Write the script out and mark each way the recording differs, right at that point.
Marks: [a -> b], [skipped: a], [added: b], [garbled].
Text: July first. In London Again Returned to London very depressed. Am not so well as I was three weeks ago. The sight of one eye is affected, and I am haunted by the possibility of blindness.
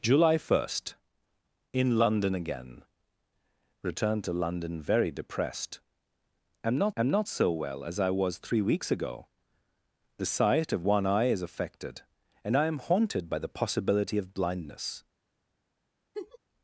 July first. In London Again Returned to London very depressed. Am not [added: am not] so well as I was three weeks ago. The sight of one eye is affected, and I am haunted by the possibility of blindness.